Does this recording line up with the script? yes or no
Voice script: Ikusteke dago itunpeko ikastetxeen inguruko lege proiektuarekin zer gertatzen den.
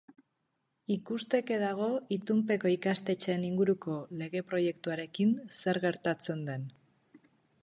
yes